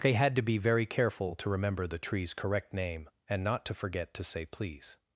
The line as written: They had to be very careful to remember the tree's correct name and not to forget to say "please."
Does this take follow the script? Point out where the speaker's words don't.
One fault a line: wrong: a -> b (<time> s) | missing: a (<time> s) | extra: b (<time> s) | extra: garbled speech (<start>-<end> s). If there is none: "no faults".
no faults